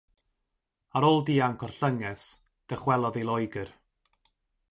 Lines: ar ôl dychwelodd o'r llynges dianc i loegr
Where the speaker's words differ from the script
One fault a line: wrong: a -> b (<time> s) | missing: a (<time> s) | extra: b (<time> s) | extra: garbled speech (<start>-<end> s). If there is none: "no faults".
wrong: dychwelodd -> dianc (1.3 s)
wrong: dianc -> dychwelodd (2.7 s)